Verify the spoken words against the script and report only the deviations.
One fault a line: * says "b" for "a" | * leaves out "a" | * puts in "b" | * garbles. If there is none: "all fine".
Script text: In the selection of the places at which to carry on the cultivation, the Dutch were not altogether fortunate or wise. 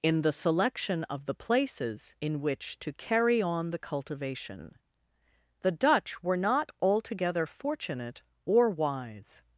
* says "in" for "at"